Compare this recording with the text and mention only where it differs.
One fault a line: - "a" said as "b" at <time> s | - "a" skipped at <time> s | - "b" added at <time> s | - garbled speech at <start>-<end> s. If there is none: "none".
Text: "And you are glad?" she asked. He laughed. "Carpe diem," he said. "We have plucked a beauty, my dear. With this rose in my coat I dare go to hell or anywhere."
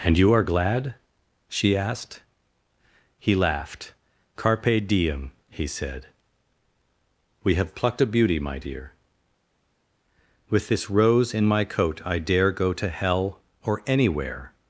none